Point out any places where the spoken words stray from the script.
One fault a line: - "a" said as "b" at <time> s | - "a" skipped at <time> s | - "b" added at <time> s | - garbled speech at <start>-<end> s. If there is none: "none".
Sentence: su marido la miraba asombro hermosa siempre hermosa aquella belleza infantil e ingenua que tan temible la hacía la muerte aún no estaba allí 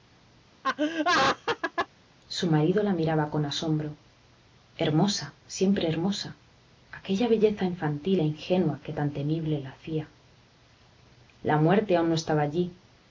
- "con" added at 3.3 s